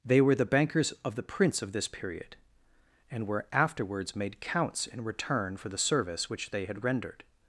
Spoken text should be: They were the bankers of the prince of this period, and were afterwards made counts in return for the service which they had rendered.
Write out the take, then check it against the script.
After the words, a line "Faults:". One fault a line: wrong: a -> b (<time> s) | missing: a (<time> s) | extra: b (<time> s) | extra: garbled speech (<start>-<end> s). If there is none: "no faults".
They were the bankers of the prince of this period, and were afterwards made counts in return for the service which they had rendered.
Faults:
no faults